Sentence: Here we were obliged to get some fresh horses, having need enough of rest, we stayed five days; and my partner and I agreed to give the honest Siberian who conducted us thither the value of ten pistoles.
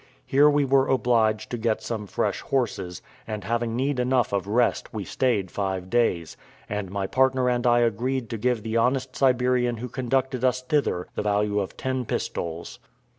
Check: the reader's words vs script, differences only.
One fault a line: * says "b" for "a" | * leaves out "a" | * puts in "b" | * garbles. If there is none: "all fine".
* puts in "and"